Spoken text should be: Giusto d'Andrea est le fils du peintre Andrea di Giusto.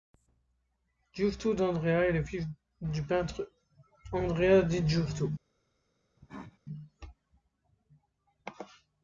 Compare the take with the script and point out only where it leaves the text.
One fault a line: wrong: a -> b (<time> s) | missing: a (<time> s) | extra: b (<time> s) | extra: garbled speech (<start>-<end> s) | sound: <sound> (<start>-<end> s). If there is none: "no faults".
sound: cough (6.2-6.6 s)